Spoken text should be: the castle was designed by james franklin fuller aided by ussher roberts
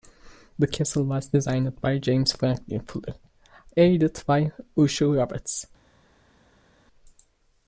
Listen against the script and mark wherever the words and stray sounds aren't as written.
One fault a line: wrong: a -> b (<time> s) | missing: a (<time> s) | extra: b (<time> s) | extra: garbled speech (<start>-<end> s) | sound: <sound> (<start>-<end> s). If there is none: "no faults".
no faults